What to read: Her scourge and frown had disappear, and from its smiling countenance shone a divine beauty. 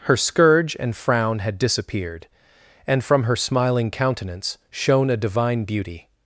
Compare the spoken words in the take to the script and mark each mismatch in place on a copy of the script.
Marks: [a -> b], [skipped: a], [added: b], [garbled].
Her scourge and frown had [disappear, -> disappeared] and from [its -> her] smiling countenance shone a divine beauty.